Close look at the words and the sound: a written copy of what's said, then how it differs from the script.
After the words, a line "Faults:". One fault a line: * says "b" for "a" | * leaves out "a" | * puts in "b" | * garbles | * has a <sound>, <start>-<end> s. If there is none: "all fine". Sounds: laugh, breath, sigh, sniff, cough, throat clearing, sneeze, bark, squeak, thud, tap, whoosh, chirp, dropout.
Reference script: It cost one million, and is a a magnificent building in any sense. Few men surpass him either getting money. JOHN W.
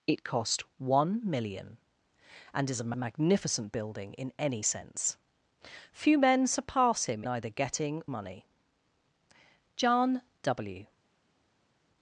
It cost one million, and is a a magnificent building in any sense. Few men surpass him either getting money. JOHN W.
Faults:
all fine